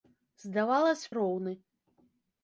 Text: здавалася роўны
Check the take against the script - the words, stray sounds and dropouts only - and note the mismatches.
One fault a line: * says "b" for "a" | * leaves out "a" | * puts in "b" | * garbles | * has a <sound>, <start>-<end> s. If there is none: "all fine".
all fine